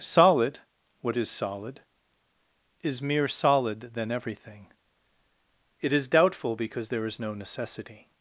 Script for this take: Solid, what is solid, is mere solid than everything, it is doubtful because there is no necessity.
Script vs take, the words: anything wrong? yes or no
no